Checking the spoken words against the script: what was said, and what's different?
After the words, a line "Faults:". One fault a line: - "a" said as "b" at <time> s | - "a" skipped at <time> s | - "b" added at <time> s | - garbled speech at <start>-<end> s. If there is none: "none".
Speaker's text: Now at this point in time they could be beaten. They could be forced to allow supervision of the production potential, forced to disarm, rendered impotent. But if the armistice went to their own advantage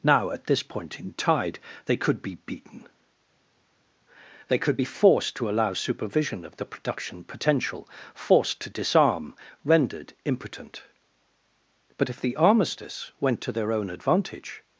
Now at this point in tide they could be beaten. They could be forced to allow supervision of the production potential, forced to disarm, rendered impotent. But if the armistice went to their own advantage
Faults:
- "time" said as "tide" at 1.1 s